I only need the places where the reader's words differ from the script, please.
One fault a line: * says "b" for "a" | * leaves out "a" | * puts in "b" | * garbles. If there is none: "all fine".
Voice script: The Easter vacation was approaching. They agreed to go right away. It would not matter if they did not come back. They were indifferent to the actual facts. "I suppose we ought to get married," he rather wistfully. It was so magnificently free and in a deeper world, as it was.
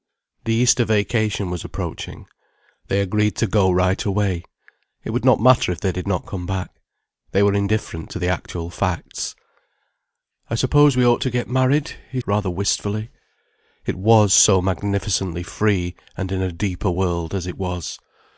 all fine